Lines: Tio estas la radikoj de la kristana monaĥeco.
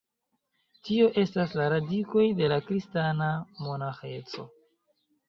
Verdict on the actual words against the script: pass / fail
pass